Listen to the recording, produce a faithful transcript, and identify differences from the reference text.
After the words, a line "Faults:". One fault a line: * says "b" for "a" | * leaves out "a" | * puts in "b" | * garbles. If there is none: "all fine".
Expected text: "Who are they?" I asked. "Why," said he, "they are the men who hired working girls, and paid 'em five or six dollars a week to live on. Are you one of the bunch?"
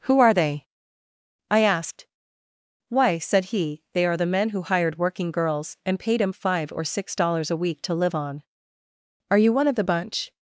"Who are they?" I asked. "Why," said he, "they are the men who hired working girls, and paid 'em five or six dollars a week to live on. Are you one of the bunch?"
Faults:
all fine